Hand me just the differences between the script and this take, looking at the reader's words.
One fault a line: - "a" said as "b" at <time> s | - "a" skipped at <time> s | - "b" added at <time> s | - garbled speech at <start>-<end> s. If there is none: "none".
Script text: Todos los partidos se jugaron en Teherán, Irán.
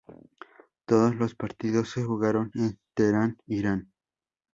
none